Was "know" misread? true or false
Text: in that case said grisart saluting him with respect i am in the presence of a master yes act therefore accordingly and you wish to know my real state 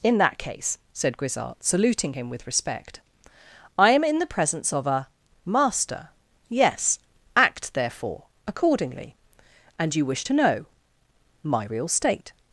false